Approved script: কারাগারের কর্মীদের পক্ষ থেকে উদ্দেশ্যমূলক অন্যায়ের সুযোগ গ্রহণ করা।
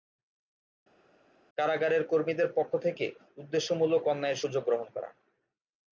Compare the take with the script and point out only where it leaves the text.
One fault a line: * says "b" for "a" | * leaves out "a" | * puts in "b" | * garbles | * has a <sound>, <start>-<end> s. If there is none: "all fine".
all fine